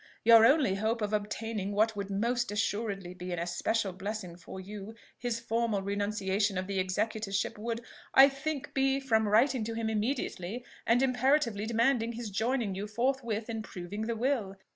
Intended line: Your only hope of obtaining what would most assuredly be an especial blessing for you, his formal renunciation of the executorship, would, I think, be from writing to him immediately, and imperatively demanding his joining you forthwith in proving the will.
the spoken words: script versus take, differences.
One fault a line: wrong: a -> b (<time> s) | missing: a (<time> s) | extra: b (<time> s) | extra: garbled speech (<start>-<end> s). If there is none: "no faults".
no faults